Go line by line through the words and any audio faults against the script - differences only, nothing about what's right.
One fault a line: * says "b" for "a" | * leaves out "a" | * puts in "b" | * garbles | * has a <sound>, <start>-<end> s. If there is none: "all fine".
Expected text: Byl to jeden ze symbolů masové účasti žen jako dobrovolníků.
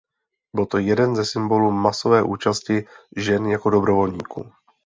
all fine